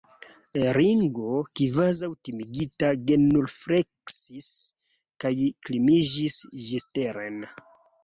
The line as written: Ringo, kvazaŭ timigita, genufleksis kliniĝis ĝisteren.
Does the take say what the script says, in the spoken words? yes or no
no